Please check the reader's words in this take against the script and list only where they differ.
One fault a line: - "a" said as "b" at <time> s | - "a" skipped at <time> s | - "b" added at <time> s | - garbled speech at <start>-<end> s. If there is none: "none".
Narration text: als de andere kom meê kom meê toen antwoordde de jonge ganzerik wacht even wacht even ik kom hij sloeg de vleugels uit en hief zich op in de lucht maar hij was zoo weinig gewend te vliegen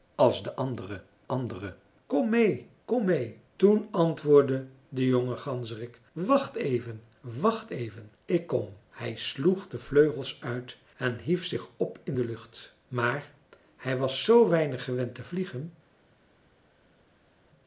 - "andere" added at 1.3 s